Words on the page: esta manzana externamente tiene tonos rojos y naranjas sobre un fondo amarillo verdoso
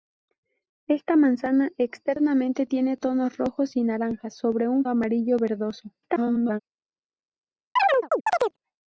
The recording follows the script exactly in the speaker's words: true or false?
false